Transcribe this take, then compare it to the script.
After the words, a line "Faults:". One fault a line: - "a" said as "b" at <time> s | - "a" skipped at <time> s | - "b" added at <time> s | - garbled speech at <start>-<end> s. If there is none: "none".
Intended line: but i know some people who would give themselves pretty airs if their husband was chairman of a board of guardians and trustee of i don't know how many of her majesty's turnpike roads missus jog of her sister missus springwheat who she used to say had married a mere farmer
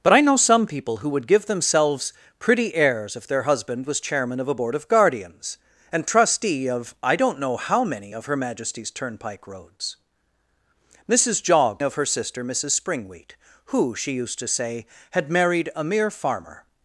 but i know some people who would give themselves pretty airs if their husband was chairman of a board of guardians and trustee of i don't know how many of her majesty's turnpike roads missus jog of her sister missus springwheat who she used to say had married a mere farmer
Faults:
none